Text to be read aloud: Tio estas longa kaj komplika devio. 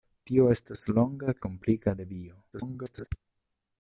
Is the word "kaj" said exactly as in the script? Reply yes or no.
no